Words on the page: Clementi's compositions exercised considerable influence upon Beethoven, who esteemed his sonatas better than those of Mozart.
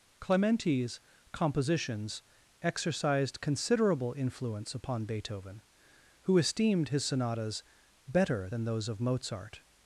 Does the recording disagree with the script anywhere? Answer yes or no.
no